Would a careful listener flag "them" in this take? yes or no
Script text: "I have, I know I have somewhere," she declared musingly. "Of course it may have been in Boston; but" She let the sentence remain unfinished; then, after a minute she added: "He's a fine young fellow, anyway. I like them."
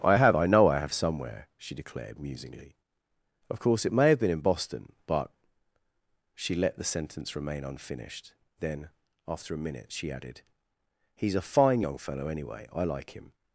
yes